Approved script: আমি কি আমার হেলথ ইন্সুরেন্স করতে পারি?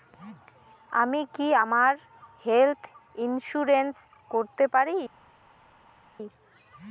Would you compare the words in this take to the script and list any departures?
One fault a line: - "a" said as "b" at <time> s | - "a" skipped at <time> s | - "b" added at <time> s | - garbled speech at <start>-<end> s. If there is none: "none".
none